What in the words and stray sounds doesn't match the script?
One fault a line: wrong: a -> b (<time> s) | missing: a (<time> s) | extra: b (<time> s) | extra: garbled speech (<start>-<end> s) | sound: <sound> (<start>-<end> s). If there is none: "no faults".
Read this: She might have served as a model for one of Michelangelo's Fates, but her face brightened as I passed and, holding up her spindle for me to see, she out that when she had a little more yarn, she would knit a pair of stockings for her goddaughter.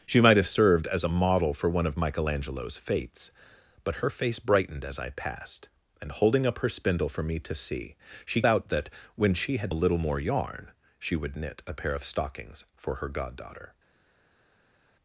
no faults